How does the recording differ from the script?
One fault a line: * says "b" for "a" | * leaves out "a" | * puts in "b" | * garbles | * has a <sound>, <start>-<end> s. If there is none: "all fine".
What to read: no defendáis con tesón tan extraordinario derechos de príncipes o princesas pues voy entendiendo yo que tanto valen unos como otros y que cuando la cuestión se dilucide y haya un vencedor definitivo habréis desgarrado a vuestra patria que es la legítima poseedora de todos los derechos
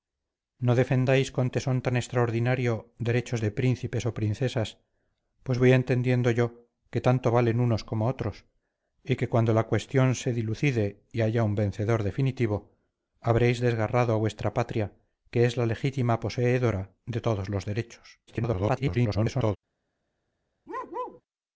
* garbles
* has a bark, 20.7-21.2 s